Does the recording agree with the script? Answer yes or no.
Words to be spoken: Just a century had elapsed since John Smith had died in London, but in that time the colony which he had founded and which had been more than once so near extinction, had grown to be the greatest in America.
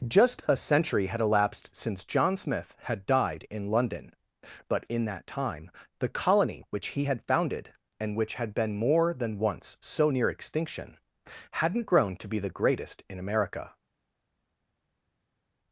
no